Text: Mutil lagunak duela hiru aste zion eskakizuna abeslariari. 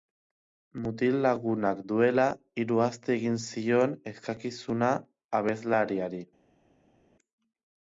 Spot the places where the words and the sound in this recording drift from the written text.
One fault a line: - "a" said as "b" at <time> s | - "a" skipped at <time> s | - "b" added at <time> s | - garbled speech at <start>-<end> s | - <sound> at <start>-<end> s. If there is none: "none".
- "egin" added at 3.2 s